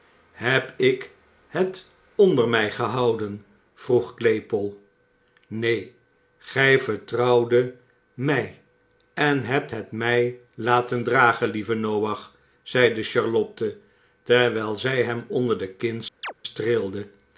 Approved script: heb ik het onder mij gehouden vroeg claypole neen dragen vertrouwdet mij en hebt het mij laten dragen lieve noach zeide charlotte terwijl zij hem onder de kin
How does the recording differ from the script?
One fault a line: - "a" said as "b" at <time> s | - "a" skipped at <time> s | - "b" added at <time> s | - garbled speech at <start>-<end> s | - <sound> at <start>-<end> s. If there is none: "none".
- "dragen" said as "gij" at 6.4 s
- chirp at 16.2-16.3 s